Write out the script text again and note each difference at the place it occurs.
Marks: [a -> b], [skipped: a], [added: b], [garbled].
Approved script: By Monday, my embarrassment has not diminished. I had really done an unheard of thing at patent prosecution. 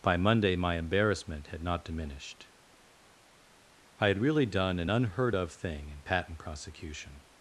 By Monday, my embarrassment [has -> had] not diminished. I had really done an unheard of thing [at -> in] patent prosecution.